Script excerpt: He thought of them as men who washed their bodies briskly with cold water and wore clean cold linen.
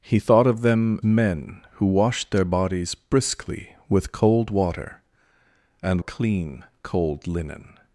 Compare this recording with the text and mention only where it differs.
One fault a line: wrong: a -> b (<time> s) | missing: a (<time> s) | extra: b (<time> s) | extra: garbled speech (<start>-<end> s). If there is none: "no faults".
missing: as (1.0 s)
missing: wore (6.0 s)